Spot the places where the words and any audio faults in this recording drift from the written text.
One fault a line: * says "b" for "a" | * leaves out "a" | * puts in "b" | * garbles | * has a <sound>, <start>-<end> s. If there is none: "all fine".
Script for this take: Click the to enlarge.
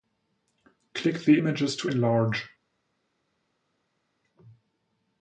* puts in "images"